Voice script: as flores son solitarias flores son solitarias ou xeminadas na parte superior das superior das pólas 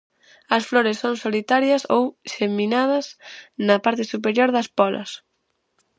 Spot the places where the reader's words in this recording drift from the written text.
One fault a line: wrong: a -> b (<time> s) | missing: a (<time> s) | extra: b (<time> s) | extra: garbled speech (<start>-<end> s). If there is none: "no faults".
missing: flores son solitarias (1.8 s)
missing: superior das (4.7 s)